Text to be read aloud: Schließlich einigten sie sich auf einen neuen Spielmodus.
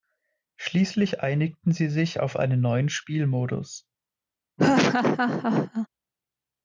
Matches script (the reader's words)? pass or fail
pass